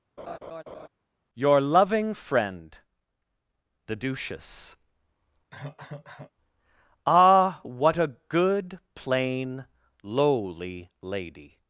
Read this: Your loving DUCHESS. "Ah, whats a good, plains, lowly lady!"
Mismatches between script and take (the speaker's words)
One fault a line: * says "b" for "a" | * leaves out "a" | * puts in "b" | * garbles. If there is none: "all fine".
* puts in "friend THE"
* says "what" for "whats"
* says "plain" for "plains"